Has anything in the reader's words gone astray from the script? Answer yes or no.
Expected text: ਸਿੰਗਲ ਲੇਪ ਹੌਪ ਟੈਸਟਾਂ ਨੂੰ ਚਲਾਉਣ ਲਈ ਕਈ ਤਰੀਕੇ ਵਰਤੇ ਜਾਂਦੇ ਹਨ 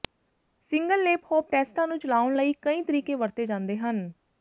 no